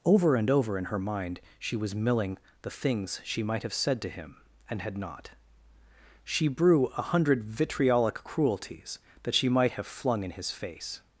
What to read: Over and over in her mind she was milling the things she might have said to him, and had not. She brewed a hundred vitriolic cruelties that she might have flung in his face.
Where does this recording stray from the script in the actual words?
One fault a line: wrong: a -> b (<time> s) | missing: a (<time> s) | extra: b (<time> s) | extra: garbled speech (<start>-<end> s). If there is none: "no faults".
wrong: brewed -> brew (6.5 s)